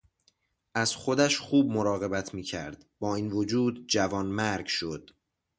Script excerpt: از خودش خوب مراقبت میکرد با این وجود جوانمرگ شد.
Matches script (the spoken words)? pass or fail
pass